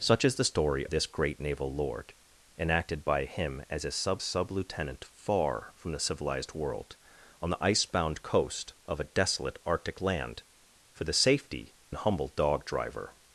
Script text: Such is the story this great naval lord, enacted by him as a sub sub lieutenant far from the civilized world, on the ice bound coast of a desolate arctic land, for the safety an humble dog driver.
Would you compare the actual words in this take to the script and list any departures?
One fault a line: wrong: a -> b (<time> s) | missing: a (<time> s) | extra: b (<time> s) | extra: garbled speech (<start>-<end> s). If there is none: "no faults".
no faults